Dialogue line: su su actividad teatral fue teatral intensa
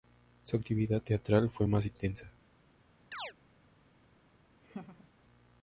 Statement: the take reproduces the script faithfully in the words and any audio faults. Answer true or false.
false